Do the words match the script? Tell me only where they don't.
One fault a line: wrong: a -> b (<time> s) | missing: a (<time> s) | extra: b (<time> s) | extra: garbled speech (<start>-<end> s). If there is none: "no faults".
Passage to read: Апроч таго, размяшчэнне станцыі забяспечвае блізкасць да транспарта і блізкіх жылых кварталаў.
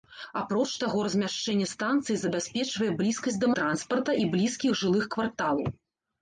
no faults